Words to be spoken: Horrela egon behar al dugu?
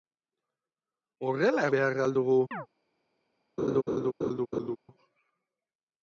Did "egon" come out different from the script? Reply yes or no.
yes